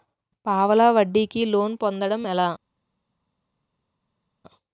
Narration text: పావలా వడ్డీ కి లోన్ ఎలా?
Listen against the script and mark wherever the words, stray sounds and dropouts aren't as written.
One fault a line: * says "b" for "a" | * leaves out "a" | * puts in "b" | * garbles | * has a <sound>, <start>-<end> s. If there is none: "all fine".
* puts in "పొందటం"